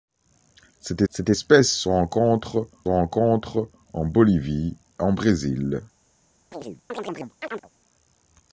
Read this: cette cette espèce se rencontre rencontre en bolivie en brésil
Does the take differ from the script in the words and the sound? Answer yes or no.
yes